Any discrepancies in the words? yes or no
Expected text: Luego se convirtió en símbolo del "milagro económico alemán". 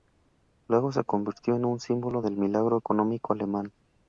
yes